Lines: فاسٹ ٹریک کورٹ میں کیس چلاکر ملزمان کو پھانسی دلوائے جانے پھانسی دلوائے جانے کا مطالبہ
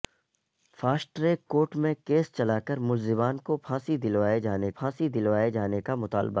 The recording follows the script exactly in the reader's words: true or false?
true